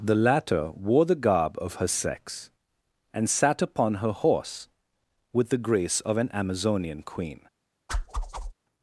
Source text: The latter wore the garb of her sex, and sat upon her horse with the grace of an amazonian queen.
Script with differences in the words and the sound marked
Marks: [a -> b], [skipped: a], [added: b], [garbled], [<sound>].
The latter wore the garb of her sex, and sat upon her horse with the grace of an amazonian queen. [whoosh]